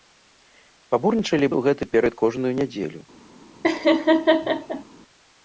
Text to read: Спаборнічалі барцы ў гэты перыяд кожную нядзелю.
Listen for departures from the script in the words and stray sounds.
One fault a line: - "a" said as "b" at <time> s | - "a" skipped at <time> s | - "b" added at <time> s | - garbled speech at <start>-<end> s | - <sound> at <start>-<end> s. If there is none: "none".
- "барцы" skipped at 1.5 s
- laugh at 3.6-4.8 s